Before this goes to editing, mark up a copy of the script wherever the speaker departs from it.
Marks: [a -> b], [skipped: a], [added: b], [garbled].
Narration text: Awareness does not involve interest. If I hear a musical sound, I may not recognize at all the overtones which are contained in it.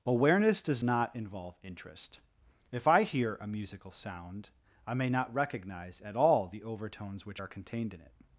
Awareness does not involve interest. If I hear a musical sound, I may not recognize at all the overtones which are contained in it.